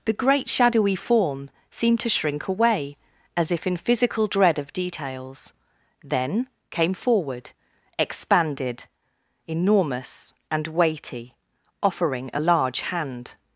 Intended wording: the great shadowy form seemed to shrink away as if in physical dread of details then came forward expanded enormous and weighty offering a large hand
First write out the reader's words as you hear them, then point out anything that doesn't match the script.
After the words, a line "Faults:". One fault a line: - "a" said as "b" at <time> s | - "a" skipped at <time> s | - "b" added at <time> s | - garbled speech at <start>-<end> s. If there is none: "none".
the great shadowy form seemed to shrink away as if in physical dread of details then came forward expanded enormous and weighty offering a large hand
Faults:
none